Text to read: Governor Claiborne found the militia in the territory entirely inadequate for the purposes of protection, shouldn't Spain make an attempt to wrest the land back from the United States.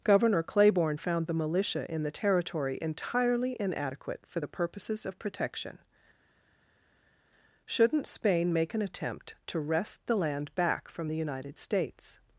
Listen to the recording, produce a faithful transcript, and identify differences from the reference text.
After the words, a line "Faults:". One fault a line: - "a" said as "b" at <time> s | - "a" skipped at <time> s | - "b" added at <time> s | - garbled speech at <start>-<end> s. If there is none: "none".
Governor Claiborne found the militia in the territory entirely inadequate for the purposes of protection, shouldn't Spain make an attempt to wrest the land back from the United States.
Faults:
none